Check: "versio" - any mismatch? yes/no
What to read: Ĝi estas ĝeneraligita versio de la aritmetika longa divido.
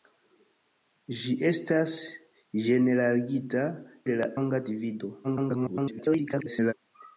yes